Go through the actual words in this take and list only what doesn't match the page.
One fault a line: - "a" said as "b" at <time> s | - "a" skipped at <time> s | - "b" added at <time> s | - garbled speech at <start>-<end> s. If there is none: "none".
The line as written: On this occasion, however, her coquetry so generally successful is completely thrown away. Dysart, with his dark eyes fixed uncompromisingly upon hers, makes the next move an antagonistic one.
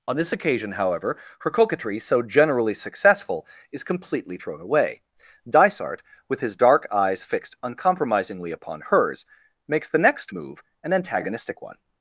none